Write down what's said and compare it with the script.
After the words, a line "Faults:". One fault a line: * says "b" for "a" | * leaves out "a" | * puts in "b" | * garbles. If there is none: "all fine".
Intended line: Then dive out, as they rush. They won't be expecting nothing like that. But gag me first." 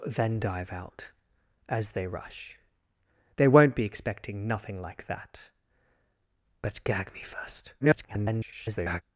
Then dive out, as they rush. They won't be expecting nothing like that. But gag me first." [garbled]
Faults:
* garbles